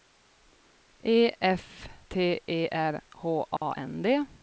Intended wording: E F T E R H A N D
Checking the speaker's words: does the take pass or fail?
pass